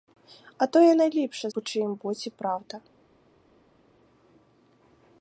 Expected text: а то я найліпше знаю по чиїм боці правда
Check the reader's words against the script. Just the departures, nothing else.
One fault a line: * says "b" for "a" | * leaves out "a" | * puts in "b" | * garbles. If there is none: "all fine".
* leaves out "знаю"